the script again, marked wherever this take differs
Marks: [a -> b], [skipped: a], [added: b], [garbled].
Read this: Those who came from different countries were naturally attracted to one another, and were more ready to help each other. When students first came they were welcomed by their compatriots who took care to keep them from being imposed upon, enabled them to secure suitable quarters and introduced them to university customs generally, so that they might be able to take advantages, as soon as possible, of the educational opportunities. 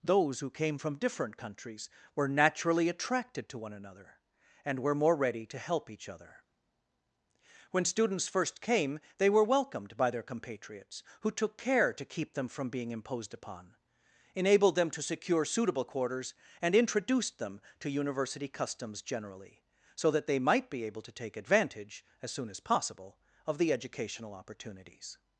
Those who came from different countries were naturally attracted to one another, and were more ready to help each other. When students first came they were welcomed by their compatriots who took care to keep them from being imposed upon, enabled them to secure suitable quarters and introduced them to university customs generally, so that they might be able to take [advantages, -> advantage] as soon as possible, of the educational opportunities.